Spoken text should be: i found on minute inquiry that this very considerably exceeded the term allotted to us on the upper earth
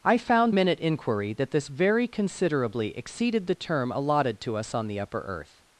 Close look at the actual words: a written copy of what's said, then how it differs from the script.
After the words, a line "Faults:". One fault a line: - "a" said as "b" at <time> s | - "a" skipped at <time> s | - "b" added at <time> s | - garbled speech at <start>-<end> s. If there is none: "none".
i found minute inquiry that this very considerably exceeded the term allotted to us on the upper earth
Faults:
- "on" skipped at 0.6 s